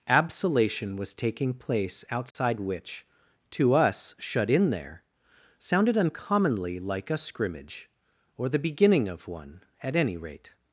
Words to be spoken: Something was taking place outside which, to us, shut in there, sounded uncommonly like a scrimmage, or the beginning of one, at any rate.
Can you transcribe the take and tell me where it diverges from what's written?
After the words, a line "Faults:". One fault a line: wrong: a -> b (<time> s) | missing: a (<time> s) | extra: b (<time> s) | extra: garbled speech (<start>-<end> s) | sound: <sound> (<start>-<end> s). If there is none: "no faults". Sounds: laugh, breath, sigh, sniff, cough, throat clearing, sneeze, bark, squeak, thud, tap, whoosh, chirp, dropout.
Absolation was taking place outside which, to us, shut in there, sounded uncommonly like a scrimmage, or the beginning of one, at any rate.
Faults:
wrong: Something -> Absolation (0.1 s)
sound: dropout (2.3-2.4 s)